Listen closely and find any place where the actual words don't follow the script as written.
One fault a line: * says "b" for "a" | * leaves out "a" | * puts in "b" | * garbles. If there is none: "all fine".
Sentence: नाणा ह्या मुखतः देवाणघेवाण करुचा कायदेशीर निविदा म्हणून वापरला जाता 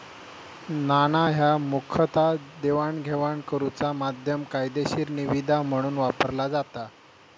* puts in "माध्यम"